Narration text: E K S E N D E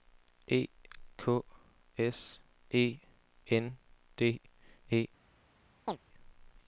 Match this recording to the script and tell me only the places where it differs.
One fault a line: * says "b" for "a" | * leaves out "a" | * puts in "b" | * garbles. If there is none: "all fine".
all fine